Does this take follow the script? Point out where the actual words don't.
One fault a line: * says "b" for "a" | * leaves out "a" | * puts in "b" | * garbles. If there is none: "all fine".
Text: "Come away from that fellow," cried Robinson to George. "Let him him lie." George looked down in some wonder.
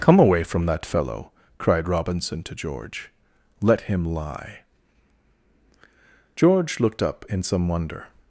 * leaves out "him"
* says "up" for "down"